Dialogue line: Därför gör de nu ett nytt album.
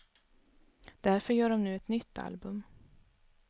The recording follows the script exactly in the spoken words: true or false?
true